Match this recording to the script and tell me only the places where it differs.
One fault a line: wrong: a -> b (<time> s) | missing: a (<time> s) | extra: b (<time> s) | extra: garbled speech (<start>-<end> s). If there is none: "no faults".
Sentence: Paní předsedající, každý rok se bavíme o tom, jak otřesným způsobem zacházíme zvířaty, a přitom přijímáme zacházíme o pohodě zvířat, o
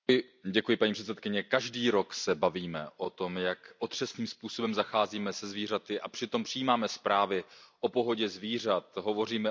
extra: se (5.3 s)
wrong: zacházíme -> zprávy (6.9 s)
extra: hovoříme (9.0 s)